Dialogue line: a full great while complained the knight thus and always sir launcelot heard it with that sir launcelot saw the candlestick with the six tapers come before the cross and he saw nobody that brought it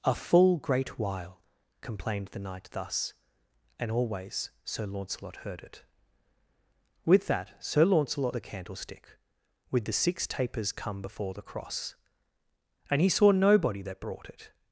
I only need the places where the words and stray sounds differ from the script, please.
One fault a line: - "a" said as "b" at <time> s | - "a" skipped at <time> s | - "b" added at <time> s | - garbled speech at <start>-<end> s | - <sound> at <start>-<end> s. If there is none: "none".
- "saw" skipped at 8.3 s